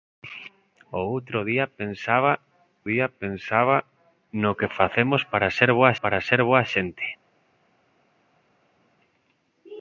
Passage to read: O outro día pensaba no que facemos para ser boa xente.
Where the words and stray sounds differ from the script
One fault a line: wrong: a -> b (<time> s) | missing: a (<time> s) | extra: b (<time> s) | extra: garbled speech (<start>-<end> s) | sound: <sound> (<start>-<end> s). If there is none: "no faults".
extra: día pensaba (2.9 s)
extra: para ser boa (6.0 s)